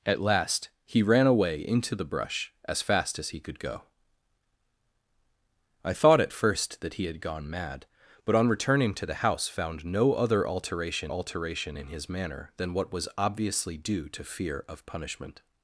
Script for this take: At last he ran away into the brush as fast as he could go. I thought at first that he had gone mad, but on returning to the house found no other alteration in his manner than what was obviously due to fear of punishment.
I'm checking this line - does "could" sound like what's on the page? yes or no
yes